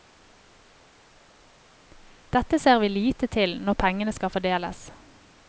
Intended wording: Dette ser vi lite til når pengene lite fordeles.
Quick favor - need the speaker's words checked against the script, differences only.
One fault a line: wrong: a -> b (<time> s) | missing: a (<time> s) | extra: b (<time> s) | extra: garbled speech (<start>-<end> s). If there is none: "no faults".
wrong: lite -> skal (4.2 s)